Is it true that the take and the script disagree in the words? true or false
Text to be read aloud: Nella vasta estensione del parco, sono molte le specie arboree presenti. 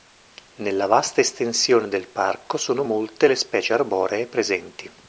false